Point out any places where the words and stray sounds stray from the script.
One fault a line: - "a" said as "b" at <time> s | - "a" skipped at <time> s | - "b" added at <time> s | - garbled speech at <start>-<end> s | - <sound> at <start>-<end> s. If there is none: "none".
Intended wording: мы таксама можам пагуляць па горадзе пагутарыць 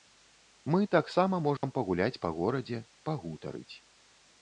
- dropout at 1.6-1.6 s